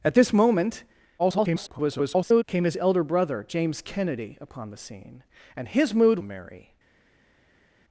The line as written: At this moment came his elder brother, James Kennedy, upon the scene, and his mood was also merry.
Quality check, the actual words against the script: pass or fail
fail